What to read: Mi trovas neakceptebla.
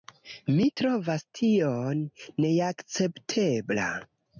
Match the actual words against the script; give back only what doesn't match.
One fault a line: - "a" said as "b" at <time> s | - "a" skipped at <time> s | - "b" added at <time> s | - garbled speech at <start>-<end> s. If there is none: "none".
- "tion" added at 1.4 s